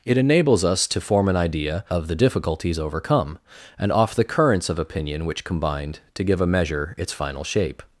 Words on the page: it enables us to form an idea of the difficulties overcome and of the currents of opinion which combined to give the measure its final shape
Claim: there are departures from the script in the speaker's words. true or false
true